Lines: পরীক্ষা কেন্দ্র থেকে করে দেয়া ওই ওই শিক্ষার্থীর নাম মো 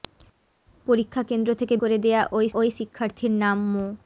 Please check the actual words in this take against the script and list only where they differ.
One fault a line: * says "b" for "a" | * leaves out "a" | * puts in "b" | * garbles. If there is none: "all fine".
all fine